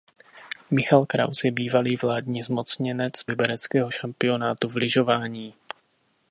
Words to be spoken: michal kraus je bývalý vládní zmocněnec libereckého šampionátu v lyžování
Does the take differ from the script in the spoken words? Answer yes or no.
no